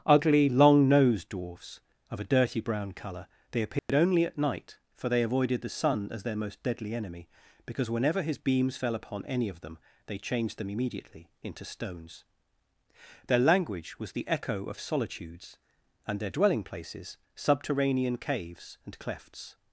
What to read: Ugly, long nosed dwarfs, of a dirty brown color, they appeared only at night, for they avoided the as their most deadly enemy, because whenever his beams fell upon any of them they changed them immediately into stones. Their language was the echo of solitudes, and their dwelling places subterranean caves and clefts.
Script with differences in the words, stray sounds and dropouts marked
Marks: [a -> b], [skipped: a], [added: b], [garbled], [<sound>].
Ugly, long nosed dwarfs, of a dirty brown color, they appeared [dropout] only at night, for they avoided the [added: sun] as their most deadly enemy, because whenever his beams fell upon any of them they changed them immediately into stones. Their language was the echo of solitudes, and their dwelling places subterranean caves and clefts.